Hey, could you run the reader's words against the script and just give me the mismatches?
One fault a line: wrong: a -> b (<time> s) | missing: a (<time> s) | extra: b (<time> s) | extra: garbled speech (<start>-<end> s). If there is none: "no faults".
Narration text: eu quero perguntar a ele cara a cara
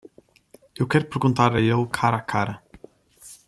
no faults